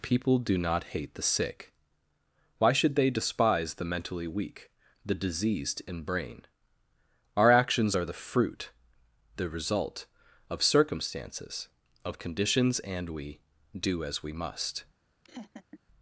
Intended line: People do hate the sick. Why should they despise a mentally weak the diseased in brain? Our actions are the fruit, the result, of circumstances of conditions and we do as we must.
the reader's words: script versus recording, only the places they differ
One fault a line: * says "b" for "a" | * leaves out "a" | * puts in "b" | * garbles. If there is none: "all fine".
* puts in "not"
* says "the" for "a"